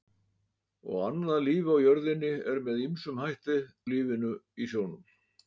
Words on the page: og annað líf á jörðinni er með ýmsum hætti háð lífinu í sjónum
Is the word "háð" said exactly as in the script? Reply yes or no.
no